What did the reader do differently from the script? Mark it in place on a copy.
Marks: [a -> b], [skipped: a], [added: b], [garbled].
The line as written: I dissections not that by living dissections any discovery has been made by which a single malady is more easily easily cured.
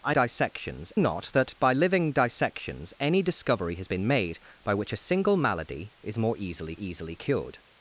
I dissections not that by living dissections any discovery has been made by which a single malady is more easily easily cured.